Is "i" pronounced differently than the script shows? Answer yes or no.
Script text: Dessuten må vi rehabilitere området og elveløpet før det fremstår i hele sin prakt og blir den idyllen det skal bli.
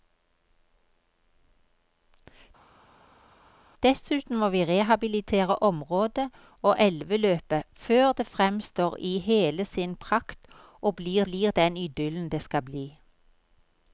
no